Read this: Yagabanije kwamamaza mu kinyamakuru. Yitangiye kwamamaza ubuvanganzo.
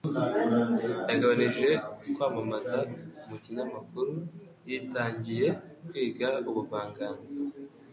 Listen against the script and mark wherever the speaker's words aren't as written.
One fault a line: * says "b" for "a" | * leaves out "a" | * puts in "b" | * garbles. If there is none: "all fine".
* says "kwiga" for "kwamamaza"